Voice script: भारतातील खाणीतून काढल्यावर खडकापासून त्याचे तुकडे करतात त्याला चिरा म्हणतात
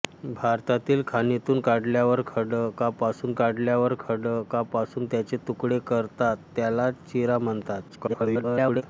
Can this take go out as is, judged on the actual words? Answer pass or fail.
fail